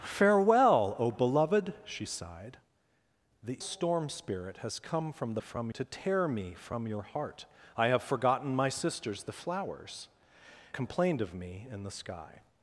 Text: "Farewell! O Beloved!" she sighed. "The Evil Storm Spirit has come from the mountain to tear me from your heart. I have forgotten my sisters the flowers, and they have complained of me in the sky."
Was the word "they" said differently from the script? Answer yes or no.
yes